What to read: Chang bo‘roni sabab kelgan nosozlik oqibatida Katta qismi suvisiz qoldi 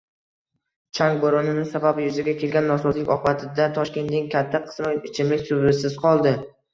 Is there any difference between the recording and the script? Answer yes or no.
yes